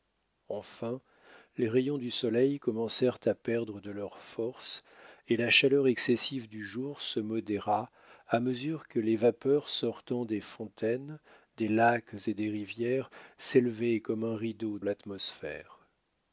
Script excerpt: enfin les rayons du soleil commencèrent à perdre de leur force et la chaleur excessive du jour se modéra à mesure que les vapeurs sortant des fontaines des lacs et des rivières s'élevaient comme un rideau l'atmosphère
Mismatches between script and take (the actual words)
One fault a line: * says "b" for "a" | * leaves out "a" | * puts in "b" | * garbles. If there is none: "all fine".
all fine